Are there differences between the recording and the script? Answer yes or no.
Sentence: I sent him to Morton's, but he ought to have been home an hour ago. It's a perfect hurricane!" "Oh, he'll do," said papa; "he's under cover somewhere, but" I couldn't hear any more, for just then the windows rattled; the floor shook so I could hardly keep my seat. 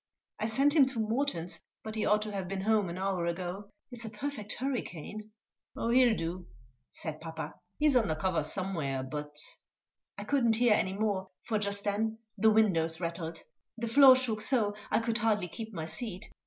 no